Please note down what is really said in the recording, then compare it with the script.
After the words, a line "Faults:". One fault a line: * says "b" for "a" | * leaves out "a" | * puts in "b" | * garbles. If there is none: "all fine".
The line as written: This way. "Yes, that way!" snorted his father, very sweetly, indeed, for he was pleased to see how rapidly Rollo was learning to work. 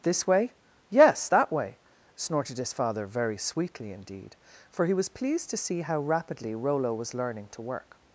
This way. "Yes, that way!" snorted his father, very sweetly, indeed, for he was pleased to see how rapidly Rollo was learning to work.
Faults:
all fine